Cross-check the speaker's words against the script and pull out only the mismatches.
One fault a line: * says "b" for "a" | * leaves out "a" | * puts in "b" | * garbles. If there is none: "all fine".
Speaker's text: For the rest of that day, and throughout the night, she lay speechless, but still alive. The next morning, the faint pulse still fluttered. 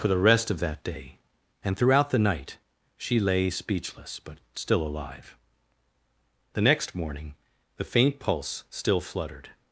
all fine